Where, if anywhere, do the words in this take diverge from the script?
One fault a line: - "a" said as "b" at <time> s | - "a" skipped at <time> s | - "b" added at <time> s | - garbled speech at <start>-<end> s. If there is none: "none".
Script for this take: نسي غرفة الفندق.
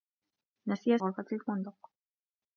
none